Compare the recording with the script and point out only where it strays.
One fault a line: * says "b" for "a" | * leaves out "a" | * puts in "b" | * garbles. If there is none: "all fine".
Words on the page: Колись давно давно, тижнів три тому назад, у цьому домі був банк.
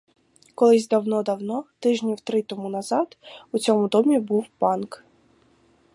all fine